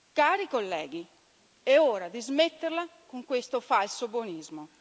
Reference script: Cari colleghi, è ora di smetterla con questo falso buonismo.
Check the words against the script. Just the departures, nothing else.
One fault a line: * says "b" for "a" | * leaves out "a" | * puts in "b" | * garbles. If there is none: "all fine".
all fine